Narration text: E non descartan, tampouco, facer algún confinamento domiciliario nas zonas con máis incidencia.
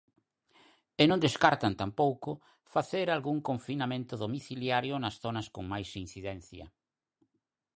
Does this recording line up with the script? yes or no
yes